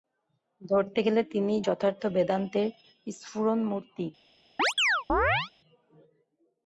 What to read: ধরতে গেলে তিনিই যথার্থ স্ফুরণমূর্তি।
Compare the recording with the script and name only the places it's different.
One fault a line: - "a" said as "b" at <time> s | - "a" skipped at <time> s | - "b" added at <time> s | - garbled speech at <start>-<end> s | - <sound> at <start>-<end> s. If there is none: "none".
- "বেদান্তের" added at 2.1 s
- chirp at 4.6-5.5 s